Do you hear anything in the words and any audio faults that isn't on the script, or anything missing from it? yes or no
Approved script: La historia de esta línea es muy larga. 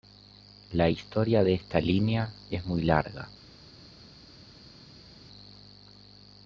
no